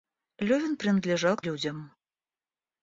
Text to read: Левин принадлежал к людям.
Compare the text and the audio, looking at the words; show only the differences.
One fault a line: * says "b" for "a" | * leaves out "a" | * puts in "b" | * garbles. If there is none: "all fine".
all fine